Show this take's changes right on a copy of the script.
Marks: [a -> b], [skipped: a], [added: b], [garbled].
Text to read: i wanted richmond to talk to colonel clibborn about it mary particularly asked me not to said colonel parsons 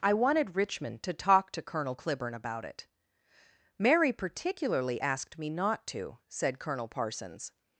i wanted richmond to talk to colonel clibborn about it mary particularly asked me not to said colonel parsons